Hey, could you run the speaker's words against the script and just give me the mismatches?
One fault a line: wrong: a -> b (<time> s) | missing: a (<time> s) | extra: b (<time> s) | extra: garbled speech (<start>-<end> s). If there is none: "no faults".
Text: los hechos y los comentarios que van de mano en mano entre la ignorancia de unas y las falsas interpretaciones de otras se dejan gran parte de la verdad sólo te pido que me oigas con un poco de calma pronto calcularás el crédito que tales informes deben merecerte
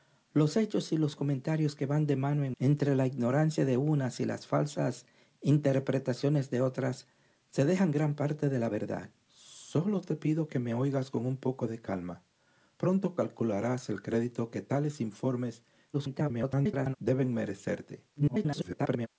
missing: mano (2.5 s)
extra: garbled speech (15.9-17.0 s)
extra: garbled speech (18.2-19.1 s)